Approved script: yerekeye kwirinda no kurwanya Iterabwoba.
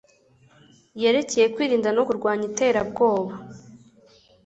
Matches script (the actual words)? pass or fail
pass